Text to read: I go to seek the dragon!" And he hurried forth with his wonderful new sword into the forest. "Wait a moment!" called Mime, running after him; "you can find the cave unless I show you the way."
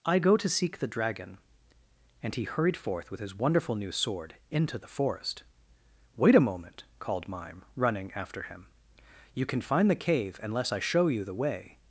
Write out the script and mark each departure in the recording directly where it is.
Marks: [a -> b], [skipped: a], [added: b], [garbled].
I go to seek the dragon!" And he hurried forth with his wonderful new sword into the forest. "Wait a moment!" called Mime, running after him; "you can find the cave unless I show you the way."